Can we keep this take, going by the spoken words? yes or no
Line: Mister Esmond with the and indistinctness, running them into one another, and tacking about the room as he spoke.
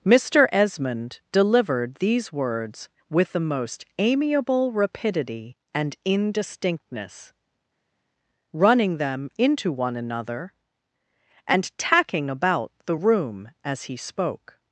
no